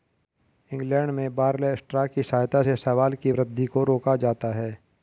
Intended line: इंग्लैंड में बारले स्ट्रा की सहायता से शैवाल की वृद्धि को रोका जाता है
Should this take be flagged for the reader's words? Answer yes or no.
no